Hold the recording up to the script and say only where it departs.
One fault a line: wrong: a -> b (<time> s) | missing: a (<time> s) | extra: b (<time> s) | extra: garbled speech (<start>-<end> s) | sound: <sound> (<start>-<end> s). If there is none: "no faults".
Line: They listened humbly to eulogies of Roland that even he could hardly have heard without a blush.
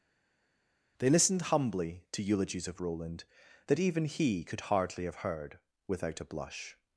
no faults